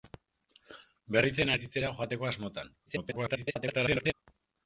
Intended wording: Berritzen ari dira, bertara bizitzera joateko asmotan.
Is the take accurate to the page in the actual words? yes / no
no